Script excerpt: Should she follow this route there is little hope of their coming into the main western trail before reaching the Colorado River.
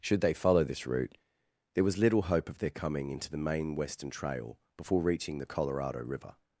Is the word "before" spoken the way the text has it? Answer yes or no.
yes